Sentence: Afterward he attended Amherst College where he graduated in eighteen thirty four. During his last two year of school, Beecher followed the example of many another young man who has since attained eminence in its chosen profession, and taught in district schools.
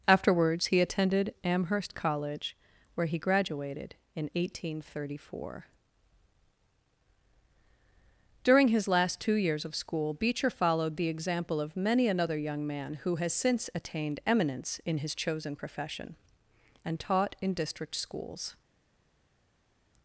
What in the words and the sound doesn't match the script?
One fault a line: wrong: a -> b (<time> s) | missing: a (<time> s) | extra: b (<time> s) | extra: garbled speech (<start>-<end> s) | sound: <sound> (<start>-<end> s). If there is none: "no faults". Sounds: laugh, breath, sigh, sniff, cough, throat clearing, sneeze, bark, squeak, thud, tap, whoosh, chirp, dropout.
wrong: Afterward -> Afterwards (0.1 s)
wrong: year -> years (9.3 s)
wrong: its -> his (15.0 s)